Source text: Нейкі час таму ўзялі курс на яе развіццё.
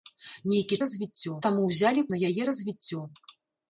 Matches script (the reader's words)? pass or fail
fail